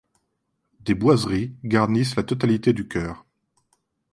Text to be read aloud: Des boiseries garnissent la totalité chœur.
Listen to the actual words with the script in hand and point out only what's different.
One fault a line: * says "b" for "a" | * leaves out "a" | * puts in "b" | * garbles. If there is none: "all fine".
* puts in "du"